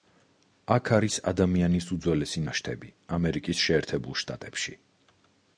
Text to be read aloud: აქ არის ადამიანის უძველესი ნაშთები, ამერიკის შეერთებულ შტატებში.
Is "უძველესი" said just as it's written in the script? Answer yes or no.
yes